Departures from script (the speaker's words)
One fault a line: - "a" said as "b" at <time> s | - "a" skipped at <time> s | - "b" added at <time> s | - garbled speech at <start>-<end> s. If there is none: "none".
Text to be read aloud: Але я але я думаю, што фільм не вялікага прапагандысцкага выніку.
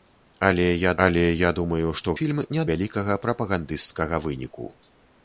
none